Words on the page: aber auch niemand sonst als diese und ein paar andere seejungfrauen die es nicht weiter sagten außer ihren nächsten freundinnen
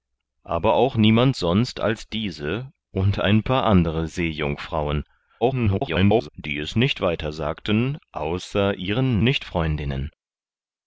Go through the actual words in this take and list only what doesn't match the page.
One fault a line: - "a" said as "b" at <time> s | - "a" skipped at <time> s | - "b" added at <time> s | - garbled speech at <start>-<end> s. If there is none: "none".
- garbled speech at 5.4-6.3 s
- "nächsten" said as "nicht" at 9.2 s